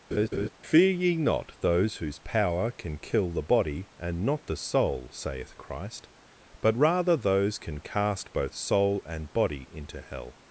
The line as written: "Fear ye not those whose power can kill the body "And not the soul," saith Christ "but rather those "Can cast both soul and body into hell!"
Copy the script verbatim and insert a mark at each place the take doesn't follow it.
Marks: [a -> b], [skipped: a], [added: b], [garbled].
"Fear ye not those whose power can kill the body "And not the soul," saith Christ "but rather those "Can cast both soul and body into hell!"